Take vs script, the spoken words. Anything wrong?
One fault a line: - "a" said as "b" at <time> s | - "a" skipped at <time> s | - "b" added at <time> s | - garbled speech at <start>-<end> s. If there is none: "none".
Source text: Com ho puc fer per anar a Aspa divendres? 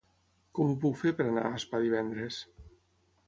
none